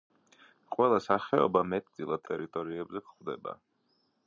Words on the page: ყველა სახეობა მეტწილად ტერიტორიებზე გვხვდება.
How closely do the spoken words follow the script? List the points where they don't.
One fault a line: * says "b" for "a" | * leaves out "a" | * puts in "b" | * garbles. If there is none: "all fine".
all fine